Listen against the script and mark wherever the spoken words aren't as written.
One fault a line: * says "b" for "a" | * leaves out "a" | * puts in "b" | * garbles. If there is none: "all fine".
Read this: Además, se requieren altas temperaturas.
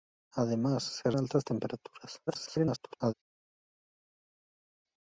* leaves out "requieren"
* garbles